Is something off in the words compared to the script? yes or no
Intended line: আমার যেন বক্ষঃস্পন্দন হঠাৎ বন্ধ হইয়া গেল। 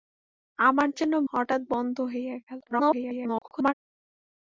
yes